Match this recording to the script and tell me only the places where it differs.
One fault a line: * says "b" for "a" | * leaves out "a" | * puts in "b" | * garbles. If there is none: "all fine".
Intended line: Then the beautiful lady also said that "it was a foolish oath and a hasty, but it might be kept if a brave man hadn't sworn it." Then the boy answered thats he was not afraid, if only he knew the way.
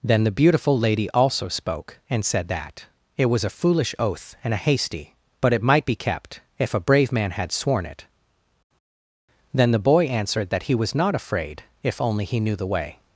* puts in "spoke and"
* says "had" for "hadn't"
* says "that" for "thats"